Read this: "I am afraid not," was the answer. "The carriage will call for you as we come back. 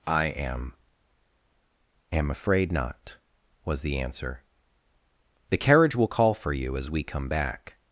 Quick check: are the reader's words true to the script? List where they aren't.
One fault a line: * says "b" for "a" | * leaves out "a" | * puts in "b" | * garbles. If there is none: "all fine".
* puts in "am"